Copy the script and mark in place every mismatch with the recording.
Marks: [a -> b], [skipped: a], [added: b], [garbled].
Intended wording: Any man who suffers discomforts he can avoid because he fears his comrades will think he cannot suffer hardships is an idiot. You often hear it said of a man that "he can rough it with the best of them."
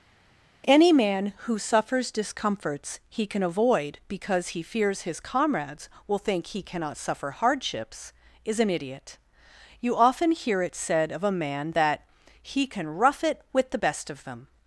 Any man who suffers discomforts he can avoid because he fears his comrades will think he cannot suffer hardships is an idiot. You often hear it said of a man that "he can rough it with the best of them."